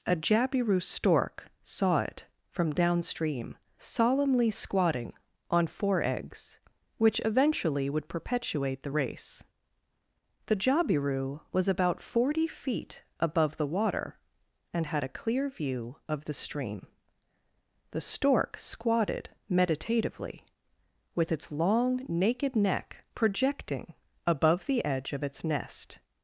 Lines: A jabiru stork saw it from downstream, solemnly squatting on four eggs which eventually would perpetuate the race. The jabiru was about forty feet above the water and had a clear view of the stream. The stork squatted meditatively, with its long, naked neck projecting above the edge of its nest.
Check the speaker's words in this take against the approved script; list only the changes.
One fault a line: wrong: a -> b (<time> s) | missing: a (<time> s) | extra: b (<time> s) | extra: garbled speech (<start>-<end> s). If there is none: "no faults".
no faults